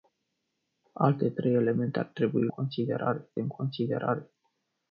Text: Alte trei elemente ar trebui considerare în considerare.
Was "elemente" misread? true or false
false